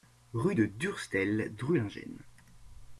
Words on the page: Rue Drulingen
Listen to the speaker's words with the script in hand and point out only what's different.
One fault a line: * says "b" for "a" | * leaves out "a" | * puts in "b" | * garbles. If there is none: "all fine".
* puts in "de Durstel"